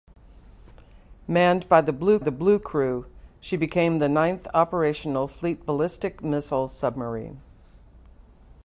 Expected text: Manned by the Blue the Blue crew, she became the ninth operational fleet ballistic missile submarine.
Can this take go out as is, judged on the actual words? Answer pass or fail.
pass